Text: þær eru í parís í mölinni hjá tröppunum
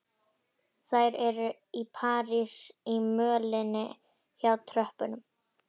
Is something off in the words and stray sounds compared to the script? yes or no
no